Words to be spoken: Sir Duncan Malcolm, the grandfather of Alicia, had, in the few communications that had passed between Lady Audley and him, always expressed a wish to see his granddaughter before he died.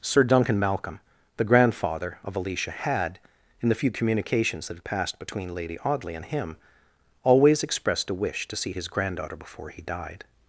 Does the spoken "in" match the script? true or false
true